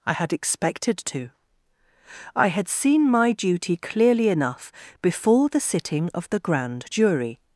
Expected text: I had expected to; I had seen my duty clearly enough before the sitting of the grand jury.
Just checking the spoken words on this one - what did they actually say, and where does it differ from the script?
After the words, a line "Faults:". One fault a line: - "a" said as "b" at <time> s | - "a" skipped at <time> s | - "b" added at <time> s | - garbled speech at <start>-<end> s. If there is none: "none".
I had expected to; I had seen my duty clearly enough before the sitting of the grand jury.
Faults:
none